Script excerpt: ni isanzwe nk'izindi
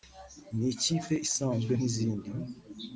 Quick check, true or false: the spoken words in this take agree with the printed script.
false